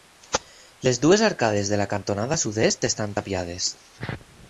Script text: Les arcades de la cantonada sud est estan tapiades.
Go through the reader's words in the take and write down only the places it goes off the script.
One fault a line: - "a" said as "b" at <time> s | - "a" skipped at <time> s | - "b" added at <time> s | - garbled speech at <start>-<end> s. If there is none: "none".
- "dues" added at 1.0 s